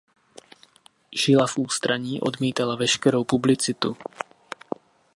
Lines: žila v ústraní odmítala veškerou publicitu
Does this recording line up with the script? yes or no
yes